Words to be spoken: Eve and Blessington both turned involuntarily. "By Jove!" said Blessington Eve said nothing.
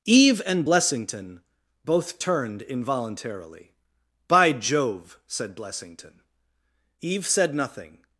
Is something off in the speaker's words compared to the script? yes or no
no